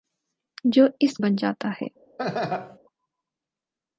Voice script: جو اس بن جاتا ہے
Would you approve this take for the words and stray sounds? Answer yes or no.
no